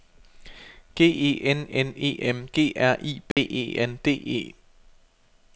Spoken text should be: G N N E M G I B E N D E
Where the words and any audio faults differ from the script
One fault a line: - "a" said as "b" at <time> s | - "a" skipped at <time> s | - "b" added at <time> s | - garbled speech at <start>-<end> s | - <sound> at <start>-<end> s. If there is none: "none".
- "E" added at 1.1 s
- "R" added at 2.8 s
- dropout at 3.3-3.4 s